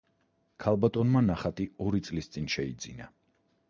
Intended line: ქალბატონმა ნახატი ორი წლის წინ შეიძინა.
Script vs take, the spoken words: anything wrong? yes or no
no